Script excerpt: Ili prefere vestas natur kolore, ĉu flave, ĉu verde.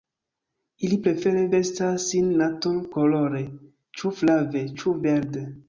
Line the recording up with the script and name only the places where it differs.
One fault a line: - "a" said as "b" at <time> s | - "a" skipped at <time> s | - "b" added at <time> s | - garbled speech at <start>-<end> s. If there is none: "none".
- "sin" added at 2.1 s